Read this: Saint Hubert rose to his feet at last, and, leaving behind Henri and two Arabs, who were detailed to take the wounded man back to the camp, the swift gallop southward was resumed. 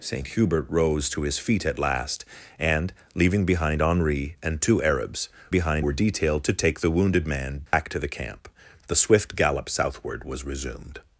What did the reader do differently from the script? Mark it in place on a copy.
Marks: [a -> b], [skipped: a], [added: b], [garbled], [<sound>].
Saint Hubert rose to his feet at last, and, leaving behind Henri and two Arabs, [who -> behind] were detailed to take the wounded man back [dropout] to the camp, the swift gallop southward was resumed.